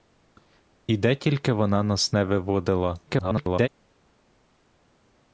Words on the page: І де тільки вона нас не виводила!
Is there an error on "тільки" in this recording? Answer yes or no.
no